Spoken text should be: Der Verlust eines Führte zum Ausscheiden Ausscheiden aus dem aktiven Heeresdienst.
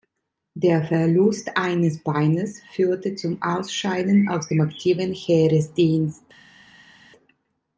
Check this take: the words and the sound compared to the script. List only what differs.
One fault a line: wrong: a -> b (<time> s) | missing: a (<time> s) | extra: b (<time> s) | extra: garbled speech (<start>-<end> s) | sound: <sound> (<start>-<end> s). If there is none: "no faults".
extra: Beines (2.0 s)
missing: Ausscheiden (4.3 s)